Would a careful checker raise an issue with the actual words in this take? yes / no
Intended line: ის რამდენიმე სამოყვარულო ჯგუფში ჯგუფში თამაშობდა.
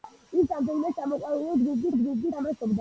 no